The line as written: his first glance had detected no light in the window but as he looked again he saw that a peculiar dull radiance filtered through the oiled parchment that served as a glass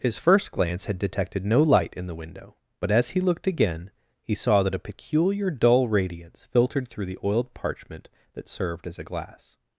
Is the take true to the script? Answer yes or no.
yes